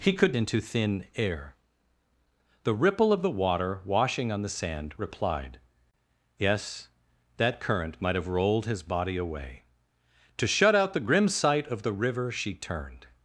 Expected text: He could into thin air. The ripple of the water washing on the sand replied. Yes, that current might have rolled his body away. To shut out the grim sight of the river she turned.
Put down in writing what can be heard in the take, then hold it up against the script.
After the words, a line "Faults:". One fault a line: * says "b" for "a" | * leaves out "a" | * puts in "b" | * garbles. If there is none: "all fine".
He could into thin air. The ripple of the water washing on the sand replied. Yes, that current might have rolled his body away. To shut out the grim sight of the river she turned.
Faults:
all fine